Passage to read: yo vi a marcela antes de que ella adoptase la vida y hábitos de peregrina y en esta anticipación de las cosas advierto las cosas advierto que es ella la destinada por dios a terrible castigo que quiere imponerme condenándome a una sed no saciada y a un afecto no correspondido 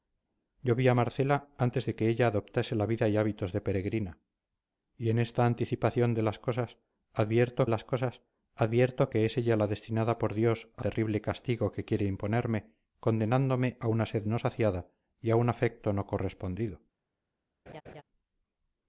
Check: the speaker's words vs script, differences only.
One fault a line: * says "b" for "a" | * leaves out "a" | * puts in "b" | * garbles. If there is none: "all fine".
all fine